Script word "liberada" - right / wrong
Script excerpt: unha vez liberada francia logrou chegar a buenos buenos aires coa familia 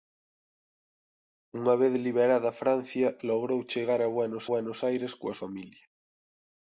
right